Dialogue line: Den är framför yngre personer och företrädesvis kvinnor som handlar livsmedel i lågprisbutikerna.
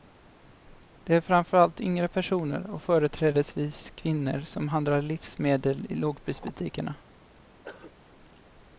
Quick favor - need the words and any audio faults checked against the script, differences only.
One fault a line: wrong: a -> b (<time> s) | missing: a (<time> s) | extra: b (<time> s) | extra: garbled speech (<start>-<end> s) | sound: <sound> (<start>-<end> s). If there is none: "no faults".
wrong: Den -> Det (1.0 s)
extra: allt (1.6 s)
sound: throat clearing (7.6-7.9 s)